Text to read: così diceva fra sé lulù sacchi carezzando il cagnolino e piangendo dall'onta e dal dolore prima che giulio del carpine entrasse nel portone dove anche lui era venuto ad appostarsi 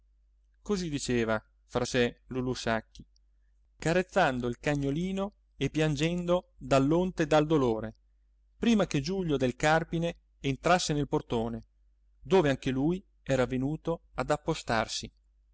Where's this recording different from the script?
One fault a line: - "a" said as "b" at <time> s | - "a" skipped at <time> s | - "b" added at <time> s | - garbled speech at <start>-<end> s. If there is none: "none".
none